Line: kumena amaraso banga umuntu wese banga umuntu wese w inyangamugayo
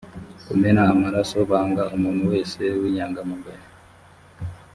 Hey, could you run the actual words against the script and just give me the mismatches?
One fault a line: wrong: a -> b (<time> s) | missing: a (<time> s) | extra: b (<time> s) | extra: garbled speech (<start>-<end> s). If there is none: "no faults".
missing: banga umuntu wese (2.6 s)